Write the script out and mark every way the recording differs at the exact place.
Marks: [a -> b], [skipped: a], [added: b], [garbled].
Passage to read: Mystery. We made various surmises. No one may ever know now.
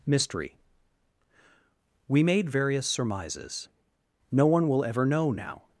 Mystery. We made various surmises. No one [may -> will] ever know now.